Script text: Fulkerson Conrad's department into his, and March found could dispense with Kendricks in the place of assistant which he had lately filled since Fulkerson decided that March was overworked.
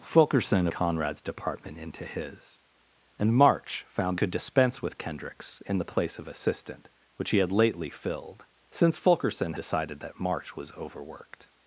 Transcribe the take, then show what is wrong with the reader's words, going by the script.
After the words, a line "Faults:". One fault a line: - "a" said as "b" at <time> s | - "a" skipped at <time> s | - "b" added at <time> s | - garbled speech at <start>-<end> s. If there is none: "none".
Fulkerson Conrad's department into his, and March found could dispense with Kendricks in the place of assistant which he had lately filled since Fulkerson decided that March was overworked.
Faults:
none